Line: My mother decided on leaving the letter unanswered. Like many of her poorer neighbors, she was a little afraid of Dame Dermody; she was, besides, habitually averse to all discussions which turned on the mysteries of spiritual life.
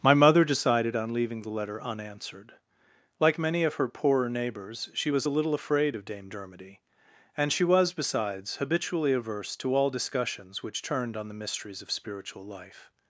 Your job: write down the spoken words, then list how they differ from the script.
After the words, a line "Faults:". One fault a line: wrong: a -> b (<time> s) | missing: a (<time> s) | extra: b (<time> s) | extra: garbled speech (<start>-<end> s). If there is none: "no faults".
My mother decided on leaving the letter unanswered. Like many of her poorer neighbors, she was a little afraid of Dame Dermody; and she was, besides, habitually averse to all discussions which turned on the mysteries of spiritual life.
Faults:
extra: and (7.4 s)